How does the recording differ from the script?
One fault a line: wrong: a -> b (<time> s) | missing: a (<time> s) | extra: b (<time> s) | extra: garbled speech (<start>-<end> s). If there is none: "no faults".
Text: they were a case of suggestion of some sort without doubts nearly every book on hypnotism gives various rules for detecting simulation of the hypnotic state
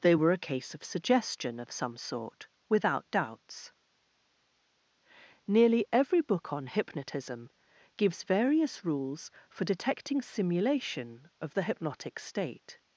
no faults